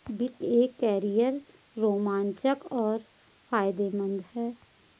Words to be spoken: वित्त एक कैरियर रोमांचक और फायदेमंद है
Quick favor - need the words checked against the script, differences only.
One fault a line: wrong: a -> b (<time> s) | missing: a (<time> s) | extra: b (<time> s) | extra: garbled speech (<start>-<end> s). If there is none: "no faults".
no faults